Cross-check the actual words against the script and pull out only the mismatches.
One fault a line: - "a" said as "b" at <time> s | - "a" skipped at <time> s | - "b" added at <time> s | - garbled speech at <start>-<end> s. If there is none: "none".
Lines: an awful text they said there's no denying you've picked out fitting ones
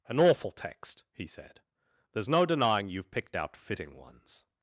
- "they" said as "he" at 1.1 s